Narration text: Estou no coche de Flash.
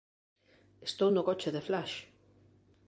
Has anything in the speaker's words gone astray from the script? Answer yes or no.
no